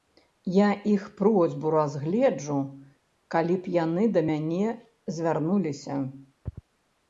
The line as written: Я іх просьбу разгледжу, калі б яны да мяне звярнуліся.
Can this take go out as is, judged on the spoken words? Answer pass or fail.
pass